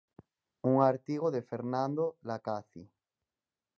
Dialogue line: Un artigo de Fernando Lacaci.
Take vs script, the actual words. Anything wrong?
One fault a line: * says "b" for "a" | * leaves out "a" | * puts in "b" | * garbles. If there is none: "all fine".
all fine